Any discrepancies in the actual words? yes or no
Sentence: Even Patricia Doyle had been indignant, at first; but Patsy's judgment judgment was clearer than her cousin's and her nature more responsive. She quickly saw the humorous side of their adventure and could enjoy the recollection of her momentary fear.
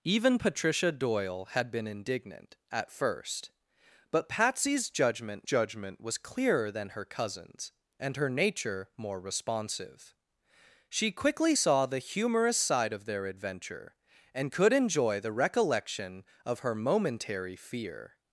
no